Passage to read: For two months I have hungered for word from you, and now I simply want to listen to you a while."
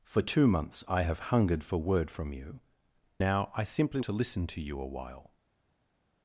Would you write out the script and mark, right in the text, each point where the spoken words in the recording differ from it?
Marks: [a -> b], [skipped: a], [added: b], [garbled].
For two months I have hungered for word from you, [skipped: and] now I simply [skipped: want] to listen to you a while."